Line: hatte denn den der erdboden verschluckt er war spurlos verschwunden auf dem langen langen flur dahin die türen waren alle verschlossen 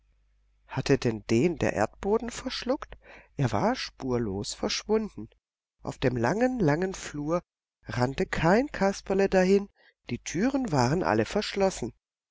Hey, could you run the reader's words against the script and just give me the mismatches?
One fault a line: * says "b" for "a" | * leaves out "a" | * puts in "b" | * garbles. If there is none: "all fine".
* puts in "rannte kein kasperle"